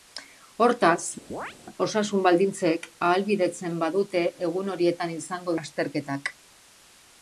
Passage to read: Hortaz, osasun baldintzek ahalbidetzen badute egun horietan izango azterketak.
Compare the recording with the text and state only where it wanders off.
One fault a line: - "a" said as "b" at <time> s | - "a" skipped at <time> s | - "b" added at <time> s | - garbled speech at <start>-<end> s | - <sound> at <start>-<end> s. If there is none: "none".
- chirp at 1.3-1.6 s